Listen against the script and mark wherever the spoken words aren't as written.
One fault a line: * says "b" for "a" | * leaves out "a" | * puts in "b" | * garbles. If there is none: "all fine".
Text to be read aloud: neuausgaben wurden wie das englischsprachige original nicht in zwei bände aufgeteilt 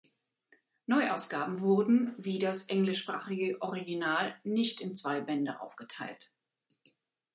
all fine